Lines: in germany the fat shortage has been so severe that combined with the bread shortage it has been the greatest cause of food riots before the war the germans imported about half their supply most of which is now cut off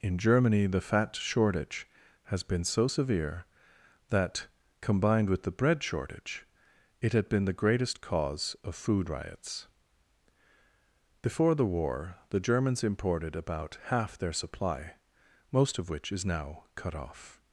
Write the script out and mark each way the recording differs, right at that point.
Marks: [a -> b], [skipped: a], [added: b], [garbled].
in germany the fat shortage has been so severe that combined with the bread shortage it [has -> had] been the greatest cause of food riots before the war the germans imported about half their supply most of which is now cut off